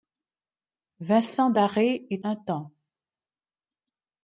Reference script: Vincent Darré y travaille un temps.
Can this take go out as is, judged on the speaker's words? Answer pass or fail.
fail